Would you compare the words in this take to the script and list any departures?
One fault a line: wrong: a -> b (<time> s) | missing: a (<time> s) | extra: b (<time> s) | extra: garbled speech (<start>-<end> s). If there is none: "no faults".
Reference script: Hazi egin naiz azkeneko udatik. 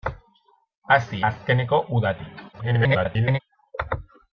missing: egin naiz (1.2 s)
extra: garbled speech (2.5-3.4 s)